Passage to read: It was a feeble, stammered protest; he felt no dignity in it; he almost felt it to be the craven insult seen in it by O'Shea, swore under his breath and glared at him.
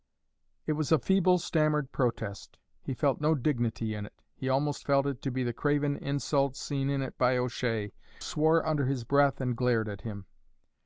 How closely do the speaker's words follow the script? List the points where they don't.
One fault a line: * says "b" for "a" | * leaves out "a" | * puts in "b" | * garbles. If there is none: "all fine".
all fine